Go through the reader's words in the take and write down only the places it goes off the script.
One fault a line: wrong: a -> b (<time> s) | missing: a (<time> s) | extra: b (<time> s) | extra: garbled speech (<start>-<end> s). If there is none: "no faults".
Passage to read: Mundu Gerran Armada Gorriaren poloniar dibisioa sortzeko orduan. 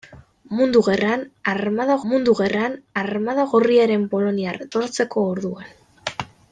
extra: mundu Gerran Armada (2.1 s)
missing: dibisioa (4.6 s)